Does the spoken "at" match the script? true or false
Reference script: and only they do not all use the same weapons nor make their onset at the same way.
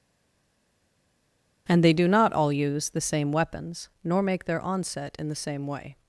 false